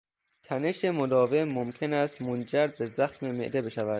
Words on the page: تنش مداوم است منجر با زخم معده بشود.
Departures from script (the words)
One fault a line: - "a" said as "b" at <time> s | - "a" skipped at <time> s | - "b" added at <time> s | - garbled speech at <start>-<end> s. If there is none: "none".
- "ممکن" added at 1.4 s
- "با" said as "به" at 2.7 s